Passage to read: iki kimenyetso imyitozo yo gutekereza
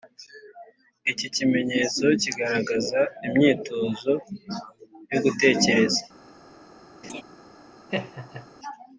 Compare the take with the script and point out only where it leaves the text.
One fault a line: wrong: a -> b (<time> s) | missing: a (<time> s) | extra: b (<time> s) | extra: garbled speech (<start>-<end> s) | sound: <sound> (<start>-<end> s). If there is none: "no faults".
extra: kigaragaza (2.2 s)
sound: laugh (7.0-7.2 s)
sound: laugh (7.9-8.5 s)